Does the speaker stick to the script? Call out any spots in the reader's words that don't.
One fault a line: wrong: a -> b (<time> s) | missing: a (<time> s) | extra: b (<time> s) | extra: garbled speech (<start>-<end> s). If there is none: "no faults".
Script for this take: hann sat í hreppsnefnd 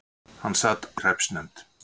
no faults